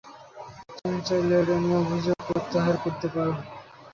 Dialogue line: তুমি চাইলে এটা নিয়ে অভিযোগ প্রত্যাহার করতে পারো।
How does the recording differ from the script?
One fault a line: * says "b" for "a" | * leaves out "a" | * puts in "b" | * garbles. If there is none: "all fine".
all fine